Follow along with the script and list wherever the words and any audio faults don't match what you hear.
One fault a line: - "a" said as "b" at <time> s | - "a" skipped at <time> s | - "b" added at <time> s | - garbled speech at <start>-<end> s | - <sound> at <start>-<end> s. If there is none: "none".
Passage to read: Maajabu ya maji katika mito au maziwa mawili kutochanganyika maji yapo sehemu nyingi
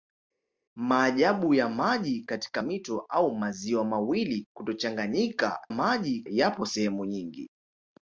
none